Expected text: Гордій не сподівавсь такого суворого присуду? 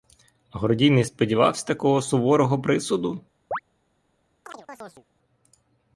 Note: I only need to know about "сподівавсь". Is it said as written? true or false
true